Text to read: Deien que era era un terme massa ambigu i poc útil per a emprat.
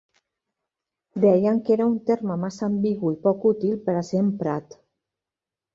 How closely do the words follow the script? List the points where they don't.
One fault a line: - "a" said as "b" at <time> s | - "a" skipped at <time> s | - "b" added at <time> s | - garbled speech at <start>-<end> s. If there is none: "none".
- "era" skipped at 1.9 s
- "ser" added at 4.1 s